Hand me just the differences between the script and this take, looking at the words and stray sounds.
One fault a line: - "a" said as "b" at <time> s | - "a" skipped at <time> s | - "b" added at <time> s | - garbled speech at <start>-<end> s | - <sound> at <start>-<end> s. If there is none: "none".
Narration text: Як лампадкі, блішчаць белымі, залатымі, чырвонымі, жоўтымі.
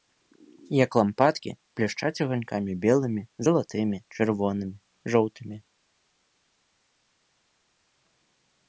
- "аганькамі" added at 2.2 s